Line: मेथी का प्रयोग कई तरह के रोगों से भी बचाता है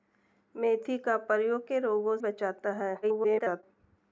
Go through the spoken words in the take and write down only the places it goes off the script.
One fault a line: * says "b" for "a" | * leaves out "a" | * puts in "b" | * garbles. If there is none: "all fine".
* leaves out "कई तरह"
* leaves out "से भी"
* garbles